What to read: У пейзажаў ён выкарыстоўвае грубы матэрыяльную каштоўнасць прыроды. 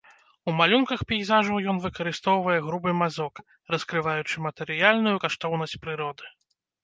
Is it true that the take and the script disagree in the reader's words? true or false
true